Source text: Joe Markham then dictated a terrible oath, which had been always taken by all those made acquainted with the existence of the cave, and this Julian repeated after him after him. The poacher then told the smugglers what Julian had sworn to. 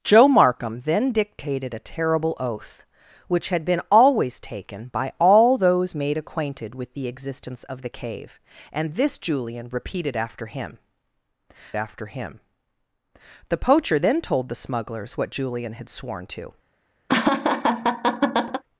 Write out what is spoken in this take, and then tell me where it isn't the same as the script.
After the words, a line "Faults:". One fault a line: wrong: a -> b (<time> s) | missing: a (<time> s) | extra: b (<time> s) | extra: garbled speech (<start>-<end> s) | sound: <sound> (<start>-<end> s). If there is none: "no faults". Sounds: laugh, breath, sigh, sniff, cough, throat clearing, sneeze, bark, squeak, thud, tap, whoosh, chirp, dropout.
Joe Markham then dictated a terrible oath, which had been always taken by all those made acquainted with the existence of the cave, and this Julian repeated after him after him. The poacher then told the smugglers what Julian had sworn to.
Faults:
sound: laugh (17.1-18.6 s)